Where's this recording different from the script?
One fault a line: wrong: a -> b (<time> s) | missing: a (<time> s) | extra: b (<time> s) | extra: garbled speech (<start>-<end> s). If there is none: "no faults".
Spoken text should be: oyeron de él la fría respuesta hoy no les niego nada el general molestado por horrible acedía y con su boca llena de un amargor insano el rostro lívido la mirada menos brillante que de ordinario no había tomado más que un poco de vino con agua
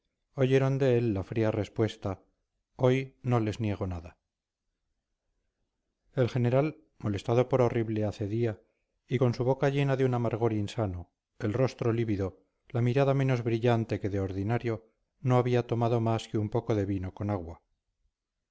no faults